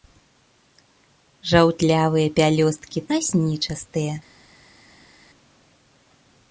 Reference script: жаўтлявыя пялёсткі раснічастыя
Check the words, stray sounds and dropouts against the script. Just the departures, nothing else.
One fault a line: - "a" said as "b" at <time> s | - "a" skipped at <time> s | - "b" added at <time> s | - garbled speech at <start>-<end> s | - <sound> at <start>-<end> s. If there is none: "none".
none